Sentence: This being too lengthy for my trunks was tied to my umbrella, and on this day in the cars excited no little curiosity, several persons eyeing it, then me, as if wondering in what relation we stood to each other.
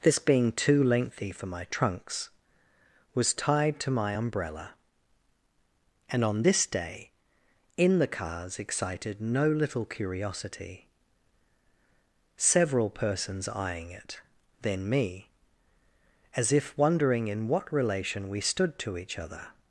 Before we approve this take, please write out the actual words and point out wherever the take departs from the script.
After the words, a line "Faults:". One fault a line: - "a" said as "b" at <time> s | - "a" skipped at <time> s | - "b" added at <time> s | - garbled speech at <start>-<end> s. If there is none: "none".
This being too lengthy for my trunks was tied to my umbrella, and on this day in the cars excited no little curiosity, several persons eyeing it, then me, as if wondering in what relation we stood to each other.
Faults:
none